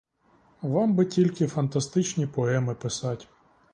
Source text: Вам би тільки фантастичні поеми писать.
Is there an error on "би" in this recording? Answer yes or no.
no